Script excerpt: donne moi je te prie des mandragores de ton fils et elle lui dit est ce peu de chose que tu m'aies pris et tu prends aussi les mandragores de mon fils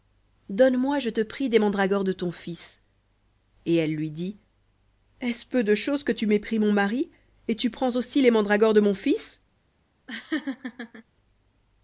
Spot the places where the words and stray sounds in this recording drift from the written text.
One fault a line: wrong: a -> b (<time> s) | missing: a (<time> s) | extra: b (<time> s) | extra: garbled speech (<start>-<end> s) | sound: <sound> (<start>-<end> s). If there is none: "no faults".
extra: mon mari (6.6 s)
sound: laugh (10.1-11.0 s)